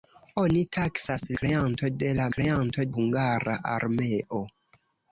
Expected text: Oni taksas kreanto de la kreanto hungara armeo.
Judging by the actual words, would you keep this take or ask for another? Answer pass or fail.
pass